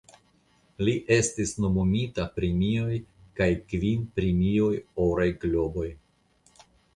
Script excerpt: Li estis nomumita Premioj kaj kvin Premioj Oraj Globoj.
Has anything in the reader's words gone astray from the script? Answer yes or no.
no